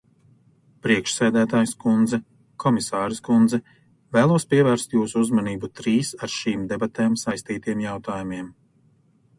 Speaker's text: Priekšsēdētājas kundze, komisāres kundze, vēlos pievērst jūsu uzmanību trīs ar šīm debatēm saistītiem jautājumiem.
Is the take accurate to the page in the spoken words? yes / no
yes